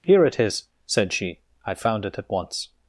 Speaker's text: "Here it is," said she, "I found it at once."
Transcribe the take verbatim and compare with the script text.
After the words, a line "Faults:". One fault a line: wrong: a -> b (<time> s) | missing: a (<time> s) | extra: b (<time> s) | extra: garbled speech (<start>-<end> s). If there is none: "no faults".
"Here it is," said she, "I found it at once."
Faults:
no faults